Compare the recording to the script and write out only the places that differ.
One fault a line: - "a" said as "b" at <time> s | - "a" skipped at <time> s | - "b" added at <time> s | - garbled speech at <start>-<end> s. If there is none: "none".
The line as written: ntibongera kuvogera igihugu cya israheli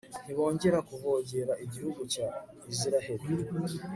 none